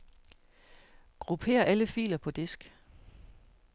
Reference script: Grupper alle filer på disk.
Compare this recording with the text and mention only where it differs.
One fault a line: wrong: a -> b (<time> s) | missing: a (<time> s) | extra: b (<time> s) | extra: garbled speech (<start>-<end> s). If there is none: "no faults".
no faults